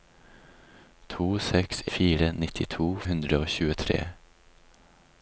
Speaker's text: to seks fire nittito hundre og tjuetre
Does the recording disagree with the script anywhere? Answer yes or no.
no